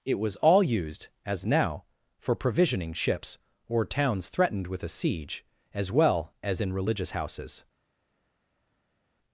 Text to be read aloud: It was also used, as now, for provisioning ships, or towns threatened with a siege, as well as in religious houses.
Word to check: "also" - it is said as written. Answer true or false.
false